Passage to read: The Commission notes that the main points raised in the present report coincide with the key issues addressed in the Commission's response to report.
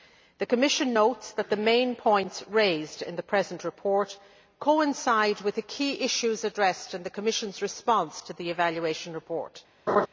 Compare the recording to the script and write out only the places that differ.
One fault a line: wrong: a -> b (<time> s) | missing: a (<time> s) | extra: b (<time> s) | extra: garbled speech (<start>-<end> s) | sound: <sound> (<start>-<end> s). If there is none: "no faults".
extra: the evaluation (8.3 s)
sound: laugh (9.9-10.1 s)